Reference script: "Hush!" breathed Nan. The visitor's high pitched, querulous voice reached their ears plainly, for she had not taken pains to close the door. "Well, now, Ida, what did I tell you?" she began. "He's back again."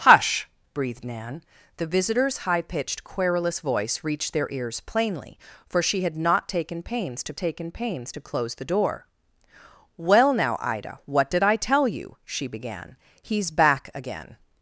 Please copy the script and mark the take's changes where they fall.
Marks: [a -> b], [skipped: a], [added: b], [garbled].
"Hush!" breathed Nan. The visitor's high pitched, querulous voice reached their ears plainly, for she had not taken pains to [added: taken pains to] close the door. "Well, now, Ida, what did I tell you?" she began. "He's back again."